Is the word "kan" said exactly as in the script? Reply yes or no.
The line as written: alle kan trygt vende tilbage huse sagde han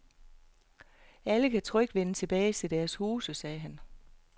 yes